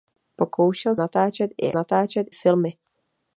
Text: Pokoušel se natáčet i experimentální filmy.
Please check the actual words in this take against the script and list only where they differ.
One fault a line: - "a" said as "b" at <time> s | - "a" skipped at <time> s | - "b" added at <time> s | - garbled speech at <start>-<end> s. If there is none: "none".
- "se" skipped at 0.9 s
- "experimentální" said as "natáčet" at 1.7 s